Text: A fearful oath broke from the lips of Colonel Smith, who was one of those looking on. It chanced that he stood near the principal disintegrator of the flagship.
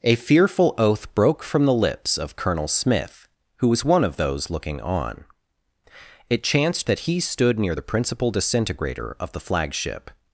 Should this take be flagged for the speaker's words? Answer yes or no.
no